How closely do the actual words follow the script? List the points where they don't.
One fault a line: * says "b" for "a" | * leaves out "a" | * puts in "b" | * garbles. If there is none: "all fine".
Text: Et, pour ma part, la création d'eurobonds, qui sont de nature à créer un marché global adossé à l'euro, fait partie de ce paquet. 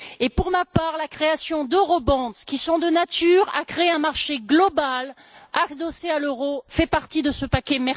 all fine